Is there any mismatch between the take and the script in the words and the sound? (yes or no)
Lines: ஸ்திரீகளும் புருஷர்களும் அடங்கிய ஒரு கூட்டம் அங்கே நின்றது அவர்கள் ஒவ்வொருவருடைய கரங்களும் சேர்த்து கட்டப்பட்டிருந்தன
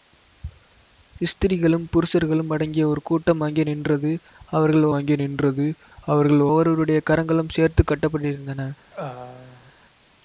yes